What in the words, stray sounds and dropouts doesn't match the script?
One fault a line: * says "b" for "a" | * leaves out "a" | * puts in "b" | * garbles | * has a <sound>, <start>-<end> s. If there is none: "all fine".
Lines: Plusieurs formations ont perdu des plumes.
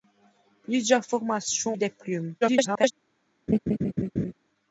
* leaves out "ont perdu"
* garbles
* has a laugh, 3.5-4.3 s